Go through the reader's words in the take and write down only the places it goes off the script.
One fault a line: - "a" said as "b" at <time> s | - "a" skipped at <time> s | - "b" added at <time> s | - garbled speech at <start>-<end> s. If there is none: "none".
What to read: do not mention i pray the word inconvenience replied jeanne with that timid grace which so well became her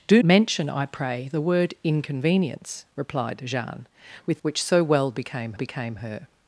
- "not" skipped at 0.2 s
- "that timid grace" skipped at 4.4 s
- "became" added at 5.5 s